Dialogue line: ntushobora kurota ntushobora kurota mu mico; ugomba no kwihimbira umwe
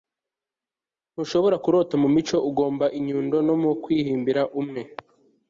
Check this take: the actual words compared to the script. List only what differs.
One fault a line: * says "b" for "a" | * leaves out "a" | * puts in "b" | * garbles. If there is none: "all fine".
* leaves out "ntushobora kurota"
* puts in "inyundo"